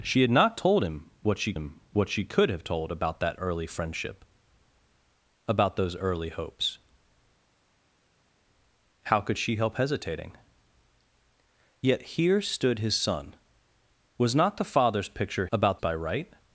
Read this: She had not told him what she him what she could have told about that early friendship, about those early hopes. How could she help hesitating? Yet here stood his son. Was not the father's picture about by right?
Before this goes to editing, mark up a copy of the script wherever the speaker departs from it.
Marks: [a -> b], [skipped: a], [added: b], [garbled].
She had not told him what she him what she could have told about that early friendship, about those early hopes. How could she help hesitating? Yet here stood his son. Was not the father's picture about by right?